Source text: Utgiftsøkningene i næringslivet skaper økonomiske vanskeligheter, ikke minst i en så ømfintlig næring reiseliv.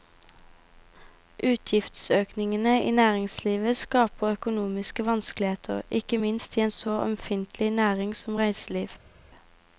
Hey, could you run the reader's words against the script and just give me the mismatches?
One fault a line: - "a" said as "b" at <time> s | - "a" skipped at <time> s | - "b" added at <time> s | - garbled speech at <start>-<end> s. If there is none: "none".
- "som" added at 8.2 s